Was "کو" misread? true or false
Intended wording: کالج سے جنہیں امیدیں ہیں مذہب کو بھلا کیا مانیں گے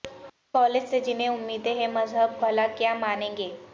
true